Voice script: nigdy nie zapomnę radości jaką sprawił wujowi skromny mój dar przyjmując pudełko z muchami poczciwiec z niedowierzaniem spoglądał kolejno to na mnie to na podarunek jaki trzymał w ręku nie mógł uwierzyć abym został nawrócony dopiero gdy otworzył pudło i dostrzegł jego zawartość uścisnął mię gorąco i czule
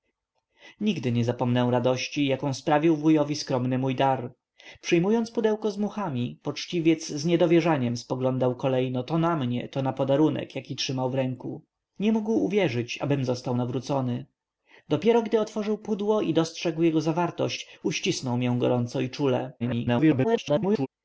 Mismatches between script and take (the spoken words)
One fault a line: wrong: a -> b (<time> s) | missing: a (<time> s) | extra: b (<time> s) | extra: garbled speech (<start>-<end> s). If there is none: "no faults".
extra: garbled speech (19.6-20.9 s)